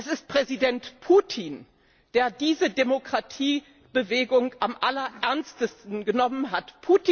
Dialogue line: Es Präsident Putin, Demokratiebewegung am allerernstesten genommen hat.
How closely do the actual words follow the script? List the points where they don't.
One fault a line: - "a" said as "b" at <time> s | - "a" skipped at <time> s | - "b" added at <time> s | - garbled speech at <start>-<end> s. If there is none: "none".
- "ist" added at 0.1 s
- "der diese" added at 2.1 s